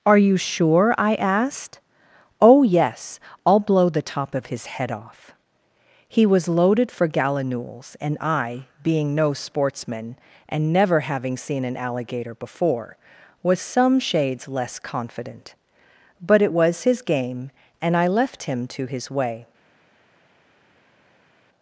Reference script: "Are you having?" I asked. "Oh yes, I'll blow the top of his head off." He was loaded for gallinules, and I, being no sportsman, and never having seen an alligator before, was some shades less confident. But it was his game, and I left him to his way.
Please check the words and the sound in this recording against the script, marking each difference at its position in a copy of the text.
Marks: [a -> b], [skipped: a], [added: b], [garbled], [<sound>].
"Are you [having?" -> sure] I asked. "Oh yes, I'll blow the top of his head off." He was loaded for gallinules, and I, being no sportsman, and never having seen an alligator before, was some shades less confident. But it was his game, and I left him to his way.